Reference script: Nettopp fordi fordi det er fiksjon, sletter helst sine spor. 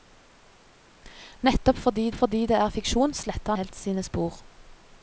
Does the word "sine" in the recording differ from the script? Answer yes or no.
no